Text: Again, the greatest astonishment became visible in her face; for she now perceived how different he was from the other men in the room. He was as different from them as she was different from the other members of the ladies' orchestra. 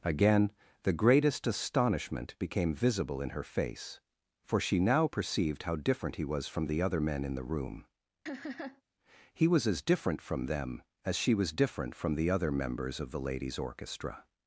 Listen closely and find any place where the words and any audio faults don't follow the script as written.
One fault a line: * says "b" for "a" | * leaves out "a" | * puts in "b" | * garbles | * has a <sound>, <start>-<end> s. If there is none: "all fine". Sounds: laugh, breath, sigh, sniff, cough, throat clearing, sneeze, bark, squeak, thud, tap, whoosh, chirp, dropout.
* has a laugh, 8.3-8.8 s